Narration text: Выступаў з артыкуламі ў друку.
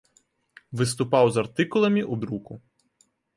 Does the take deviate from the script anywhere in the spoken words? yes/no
no